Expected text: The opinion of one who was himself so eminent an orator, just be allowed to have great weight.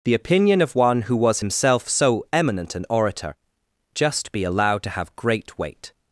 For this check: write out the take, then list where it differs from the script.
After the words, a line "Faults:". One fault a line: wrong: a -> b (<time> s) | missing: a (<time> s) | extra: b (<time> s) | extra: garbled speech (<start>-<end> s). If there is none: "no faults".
The opinion of one who was himself so eminent an orator, just be allowed to have great weight.
Faults:
no faults